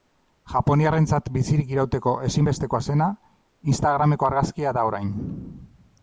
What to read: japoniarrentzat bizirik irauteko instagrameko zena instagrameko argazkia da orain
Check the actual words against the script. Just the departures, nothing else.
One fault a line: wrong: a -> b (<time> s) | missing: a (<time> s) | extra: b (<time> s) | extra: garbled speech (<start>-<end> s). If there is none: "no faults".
wrong: instagrameko -> ezinbestekoa (2.3 s)